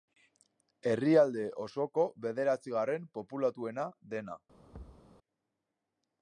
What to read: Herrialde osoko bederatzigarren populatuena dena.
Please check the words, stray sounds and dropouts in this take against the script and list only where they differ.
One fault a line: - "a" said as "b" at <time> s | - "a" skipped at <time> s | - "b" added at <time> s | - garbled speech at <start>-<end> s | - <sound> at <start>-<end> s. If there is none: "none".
- thud at 4.7-5.1 s